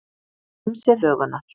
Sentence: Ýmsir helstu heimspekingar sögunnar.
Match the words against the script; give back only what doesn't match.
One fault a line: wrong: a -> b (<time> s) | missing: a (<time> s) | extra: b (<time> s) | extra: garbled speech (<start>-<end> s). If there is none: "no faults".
missing: helstu heimspekingar (1.1 s)